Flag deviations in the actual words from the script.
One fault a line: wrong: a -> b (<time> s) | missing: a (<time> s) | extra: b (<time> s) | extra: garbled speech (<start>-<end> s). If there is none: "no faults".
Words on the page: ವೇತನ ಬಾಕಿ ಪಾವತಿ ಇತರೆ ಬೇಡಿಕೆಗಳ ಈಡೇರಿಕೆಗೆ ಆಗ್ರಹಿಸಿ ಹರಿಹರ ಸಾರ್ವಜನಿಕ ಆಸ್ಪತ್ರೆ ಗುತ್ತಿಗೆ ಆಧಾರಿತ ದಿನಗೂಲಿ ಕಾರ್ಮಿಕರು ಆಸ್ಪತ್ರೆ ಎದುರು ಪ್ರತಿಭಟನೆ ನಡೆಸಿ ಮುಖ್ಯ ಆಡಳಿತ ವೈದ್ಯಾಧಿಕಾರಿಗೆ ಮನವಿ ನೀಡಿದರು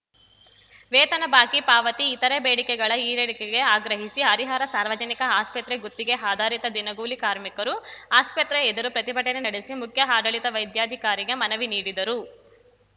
no faults